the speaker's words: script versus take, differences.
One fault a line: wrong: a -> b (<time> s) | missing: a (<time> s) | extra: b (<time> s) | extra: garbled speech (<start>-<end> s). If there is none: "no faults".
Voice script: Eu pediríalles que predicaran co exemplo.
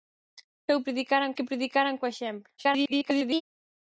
wrong: pediríalles -> predicaran (0.8 s)
extra: garbled speech (2.6-3.4 s)